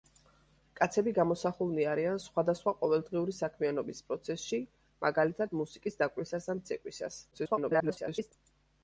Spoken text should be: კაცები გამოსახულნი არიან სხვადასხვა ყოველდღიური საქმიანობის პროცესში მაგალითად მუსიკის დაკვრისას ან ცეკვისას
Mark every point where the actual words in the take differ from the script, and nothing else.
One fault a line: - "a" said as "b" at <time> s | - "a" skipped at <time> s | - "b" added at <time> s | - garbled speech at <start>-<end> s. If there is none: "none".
- garbled speech at 7.3-8.3 s